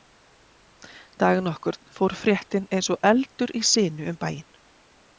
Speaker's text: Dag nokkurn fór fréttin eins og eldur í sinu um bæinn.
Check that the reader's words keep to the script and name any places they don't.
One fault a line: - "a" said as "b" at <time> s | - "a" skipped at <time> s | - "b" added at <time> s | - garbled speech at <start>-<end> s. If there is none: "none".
none